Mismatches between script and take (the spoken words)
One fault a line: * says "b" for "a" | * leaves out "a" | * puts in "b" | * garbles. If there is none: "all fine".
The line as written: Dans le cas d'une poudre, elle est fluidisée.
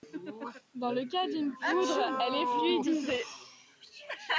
all fine